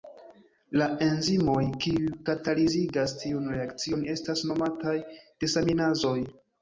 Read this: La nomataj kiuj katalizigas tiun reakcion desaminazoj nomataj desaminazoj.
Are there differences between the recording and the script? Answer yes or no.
yes